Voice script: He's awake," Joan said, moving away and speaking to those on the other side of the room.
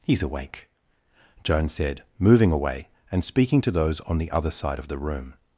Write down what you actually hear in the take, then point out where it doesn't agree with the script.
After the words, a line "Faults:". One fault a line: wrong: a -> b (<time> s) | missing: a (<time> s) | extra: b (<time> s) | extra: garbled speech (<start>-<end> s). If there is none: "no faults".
He's awake," Joan said, moving away and speaking to those on the other side of the room.
Faults:
no faults